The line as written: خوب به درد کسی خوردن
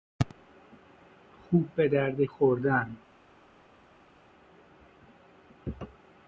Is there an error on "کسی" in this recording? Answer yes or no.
yes